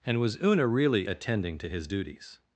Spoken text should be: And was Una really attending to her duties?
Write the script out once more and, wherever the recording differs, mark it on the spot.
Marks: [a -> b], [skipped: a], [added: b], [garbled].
And was Una really attending to [her -> his] duties?